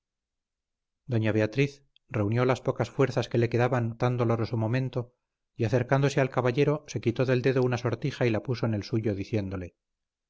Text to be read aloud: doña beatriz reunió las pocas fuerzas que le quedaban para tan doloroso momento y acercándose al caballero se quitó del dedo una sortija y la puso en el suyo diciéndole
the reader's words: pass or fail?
fail